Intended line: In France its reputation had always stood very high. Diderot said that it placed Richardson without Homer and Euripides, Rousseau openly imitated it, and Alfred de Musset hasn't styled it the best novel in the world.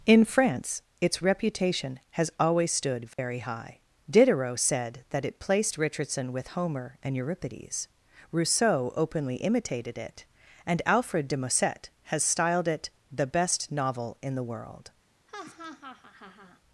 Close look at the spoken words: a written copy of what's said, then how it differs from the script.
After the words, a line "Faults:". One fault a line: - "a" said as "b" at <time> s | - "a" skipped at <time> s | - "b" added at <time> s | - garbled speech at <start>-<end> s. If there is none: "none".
In France its reputation has always stood very high. Diderot said that it placed Richardson with Homer and Euripides, Rousseau openly imitated it, and Alfred de Musset has styled it the best novel in the world.
Faults:
- "had" said as "has" at 2.1 s
- "without" said as "with" at 6.3 s
- "hasn't" said as "has" at 12.1 s